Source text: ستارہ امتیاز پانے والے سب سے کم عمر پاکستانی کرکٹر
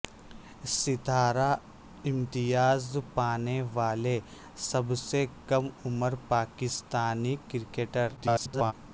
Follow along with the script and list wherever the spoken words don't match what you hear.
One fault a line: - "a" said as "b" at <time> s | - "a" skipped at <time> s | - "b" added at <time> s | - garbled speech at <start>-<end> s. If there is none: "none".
- garbled speech at 8.2-8.7 s